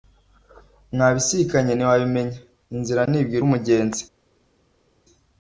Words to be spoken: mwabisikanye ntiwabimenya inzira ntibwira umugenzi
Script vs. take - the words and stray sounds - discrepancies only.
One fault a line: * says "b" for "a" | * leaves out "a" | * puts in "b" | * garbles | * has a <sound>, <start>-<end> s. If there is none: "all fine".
all fine